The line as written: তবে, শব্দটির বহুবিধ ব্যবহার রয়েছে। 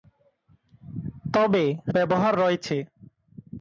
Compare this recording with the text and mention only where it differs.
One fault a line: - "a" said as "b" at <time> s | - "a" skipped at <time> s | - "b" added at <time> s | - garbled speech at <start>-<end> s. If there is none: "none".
- "শব্দটির বহুবিধ" skipped at 1.6 s